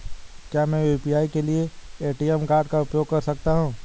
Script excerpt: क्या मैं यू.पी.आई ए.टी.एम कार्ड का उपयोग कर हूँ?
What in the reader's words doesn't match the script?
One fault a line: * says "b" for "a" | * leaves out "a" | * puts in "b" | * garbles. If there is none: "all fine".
* puts in "के लिए"
* puts in "सकता"